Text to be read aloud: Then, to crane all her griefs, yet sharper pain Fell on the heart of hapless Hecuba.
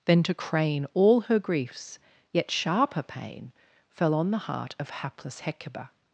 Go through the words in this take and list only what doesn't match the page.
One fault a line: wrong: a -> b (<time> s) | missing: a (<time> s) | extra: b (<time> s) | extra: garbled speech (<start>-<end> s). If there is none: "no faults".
no faults